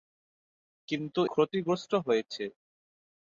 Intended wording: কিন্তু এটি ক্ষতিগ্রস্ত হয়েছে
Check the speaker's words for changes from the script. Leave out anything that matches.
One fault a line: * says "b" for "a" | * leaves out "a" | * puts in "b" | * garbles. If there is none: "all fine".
* leaves out "এটি"